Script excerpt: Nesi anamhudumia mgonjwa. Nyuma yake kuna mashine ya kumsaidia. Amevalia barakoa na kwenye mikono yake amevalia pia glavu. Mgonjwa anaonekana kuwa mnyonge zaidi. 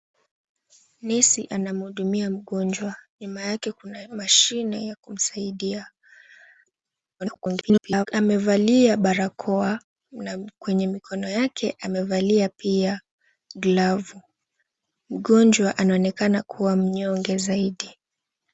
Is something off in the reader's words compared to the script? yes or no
yes